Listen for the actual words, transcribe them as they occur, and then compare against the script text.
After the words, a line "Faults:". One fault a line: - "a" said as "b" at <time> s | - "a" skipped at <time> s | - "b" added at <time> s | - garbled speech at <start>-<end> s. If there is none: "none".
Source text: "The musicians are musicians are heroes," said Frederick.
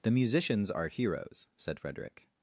"The musicians are heroes," said Frederick.
Faults:
- "musicians are" skipped at 0.9 s